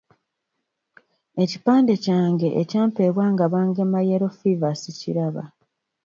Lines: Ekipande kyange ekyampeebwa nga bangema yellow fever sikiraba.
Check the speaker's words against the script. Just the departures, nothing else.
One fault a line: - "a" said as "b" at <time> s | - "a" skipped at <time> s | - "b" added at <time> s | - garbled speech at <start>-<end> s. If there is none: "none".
none